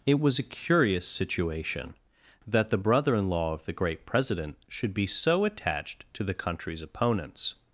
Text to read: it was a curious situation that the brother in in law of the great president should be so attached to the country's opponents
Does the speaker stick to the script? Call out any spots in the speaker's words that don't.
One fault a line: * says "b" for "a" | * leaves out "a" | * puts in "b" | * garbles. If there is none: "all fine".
* leaves out "in"